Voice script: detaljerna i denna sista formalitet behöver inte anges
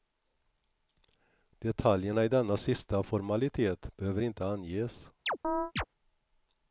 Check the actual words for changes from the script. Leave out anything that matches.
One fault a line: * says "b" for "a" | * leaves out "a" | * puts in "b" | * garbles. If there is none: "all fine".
all fine